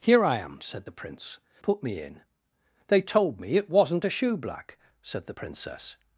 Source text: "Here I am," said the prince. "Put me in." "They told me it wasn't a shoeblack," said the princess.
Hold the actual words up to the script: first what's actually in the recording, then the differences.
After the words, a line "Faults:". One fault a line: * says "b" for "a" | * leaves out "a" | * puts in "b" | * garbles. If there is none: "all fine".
"Here I am," said the prince. "Put me in." "They told me it wasn't a shoeblack," said the princess.
Faults:
all fine